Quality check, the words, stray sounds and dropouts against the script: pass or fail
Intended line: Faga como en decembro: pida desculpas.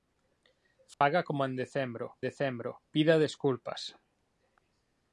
fail